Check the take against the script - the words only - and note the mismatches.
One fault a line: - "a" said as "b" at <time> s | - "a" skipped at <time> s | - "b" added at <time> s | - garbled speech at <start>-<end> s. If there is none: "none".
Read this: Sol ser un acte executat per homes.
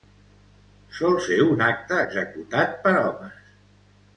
none